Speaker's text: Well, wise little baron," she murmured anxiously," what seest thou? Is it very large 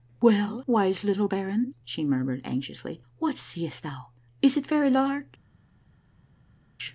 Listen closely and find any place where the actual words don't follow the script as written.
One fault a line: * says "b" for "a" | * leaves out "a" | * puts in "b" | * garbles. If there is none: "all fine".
all fine